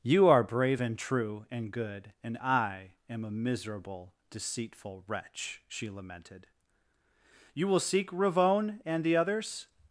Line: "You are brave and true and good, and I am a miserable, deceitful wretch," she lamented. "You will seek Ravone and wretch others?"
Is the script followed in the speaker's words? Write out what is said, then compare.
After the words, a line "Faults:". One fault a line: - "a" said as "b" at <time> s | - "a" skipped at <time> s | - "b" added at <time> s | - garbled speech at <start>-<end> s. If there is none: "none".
"You are brave and true and good, and I am a miserable, deceitful wretch," she lamented. "You will seek Ravone and the others?"
Faults:
- "wretch" said as "the" at 9.0 s